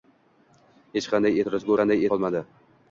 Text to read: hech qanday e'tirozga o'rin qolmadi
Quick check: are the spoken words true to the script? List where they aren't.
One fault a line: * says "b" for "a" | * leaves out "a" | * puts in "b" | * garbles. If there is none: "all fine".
* says "qanday" for "o'rin"